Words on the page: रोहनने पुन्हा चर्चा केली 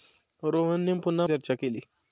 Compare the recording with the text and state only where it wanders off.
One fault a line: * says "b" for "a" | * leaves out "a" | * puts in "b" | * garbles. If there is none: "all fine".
all fine